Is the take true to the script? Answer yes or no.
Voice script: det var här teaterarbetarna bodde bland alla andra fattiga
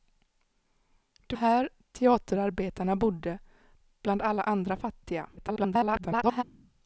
no